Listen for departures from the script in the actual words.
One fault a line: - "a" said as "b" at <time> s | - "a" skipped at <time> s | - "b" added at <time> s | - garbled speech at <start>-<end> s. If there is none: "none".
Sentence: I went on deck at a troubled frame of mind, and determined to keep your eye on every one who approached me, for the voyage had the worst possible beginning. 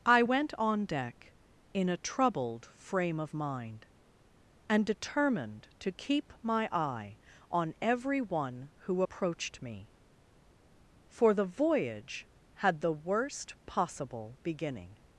- "at" said as "in" at 1.7 s
- "your" said as "my" at 6.4 s